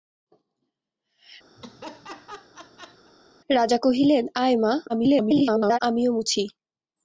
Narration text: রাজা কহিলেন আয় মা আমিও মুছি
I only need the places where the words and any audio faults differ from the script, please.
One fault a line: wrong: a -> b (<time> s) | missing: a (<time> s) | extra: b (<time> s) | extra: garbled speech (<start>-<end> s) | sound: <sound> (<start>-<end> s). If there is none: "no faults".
sound: laugh (1.6-3.1 s)
extra: garbled speech (4.9-5.8 s)